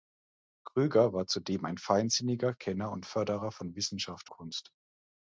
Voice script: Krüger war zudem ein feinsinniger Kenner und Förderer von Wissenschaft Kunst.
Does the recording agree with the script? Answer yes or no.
yes